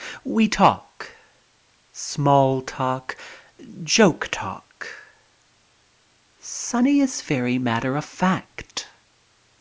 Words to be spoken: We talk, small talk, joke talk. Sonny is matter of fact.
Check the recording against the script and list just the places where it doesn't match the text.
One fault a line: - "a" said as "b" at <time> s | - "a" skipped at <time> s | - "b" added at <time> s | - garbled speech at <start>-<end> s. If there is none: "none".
- "very" added at 7.2 s